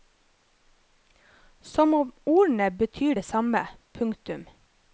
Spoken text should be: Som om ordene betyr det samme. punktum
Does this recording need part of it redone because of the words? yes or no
no